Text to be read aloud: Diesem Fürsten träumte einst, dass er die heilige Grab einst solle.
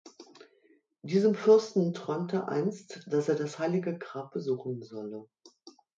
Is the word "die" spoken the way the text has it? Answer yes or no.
no